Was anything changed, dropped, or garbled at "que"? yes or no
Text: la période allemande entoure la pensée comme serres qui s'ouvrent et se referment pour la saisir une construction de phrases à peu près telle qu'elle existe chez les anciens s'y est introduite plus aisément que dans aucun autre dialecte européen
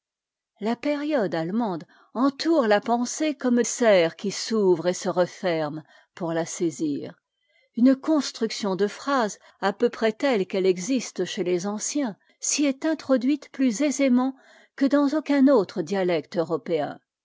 no